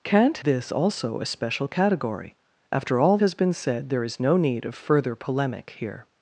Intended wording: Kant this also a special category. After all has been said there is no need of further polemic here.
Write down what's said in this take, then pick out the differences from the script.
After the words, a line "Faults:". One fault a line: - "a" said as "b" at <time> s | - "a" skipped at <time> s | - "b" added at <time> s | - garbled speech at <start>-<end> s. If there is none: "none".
Kant this also a special category. After all has been said there is no need of further polemic here.
Faults:
none